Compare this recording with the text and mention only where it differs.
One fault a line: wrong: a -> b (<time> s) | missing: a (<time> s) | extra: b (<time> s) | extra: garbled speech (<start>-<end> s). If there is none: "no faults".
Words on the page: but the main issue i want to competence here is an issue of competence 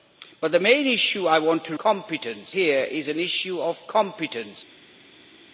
no faults